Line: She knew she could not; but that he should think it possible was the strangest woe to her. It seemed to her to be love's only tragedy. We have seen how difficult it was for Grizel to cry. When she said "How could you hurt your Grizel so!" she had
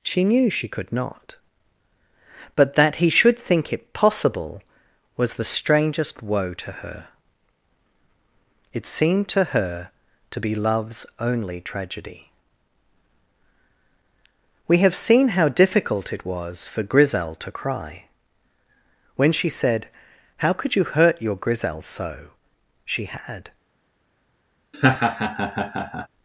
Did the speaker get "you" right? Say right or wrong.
right